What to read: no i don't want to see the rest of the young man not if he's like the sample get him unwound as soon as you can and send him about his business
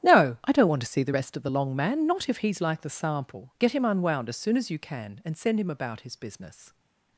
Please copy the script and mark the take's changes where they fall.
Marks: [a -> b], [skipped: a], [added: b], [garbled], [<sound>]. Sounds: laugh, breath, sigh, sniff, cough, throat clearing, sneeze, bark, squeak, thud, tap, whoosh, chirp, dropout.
no i don't want to see the rest of the [young -> long] man not if he's like the sample get him unwound as soon as you can and send him about his business